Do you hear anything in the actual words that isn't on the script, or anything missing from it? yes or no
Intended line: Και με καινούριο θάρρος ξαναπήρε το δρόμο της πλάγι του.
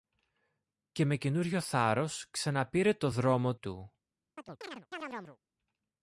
yes